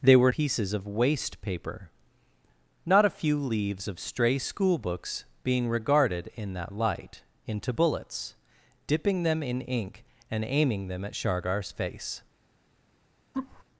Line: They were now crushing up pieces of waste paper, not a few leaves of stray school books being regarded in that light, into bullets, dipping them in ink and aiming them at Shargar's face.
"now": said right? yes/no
no